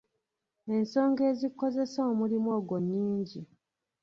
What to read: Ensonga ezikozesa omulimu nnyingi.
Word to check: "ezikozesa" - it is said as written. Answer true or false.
true